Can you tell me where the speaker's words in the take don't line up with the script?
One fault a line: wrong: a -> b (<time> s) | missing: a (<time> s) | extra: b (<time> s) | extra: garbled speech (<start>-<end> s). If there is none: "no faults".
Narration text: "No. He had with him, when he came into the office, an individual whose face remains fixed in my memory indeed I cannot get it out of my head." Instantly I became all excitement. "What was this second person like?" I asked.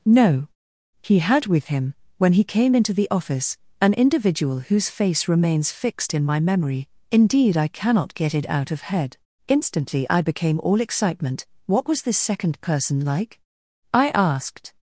missing: my (8.8 s)